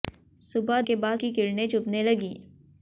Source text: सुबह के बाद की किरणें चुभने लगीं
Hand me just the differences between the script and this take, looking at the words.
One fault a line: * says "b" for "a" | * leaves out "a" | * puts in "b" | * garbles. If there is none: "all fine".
all fine